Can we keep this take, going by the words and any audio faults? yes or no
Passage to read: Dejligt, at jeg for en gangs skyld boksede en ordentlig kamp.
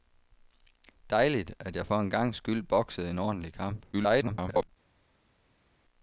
no